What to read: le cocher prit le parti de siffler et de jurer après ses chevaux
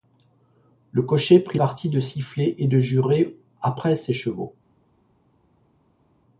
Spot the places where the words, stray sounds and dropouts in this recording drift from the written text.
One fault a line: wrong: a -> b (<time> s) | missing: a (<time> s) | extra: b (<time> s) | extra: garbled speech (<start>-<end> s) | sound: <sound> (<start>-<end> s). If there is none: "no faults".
missing: le (1.6 s)